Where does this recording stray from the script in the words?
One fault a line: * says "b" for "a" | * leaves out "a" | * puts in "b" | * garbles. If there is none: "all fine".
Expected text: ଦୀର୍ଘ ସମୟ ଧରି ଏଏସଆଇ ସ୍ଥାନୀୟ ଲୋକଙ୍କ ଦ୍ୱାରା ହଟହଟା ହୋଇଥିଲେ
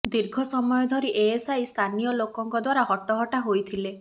all fine